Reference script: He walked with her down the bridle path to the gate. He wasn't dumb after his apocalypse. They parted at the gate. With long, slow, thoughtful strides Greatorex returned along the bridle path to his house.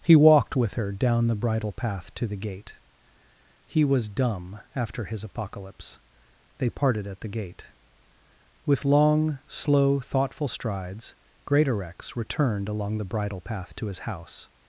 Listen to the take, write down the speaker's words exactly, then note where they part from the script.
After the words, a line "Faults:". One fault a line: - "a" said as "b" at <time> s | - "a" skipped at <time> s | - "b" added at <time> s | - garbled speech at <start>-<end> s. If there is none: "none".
He walked with her down the bridle path to the gate. He was dumb after his apocalypse. They parted at the gate. With long, slow, thoughtful strides Greatorex returned along the bridle path to his house.
Faults:
- "wasn't" said as "was" at 3.8 s